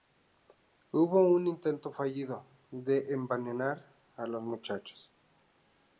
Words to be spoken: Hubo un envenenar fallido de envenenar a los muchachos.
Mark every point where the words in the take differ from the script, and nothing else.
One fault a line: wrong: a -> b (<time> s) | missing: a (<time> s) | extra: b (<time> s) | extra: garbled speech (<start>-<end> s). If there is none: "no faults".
wrong: envenenar -> intento (1.4 s)